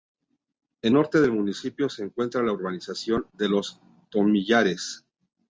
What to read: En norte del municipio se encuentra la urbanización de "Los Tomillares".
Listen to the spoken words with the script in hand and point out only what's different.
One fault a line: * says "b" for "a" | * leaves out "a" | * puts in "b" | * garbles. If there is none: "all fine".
all fine